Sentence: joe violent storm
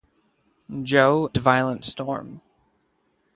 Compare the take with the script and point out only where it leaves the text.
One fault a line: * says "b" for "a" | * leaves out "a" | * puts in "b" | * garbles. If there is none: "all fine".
all fine